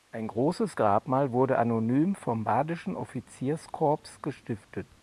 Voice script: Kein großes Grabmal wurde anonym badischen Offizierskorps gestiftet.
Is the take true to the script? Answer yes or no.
no